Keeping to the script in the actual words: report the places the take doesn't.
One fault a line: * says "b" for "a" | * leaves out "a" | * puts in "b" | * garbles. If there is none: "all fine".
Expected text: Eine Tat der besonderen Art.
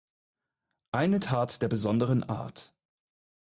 all fine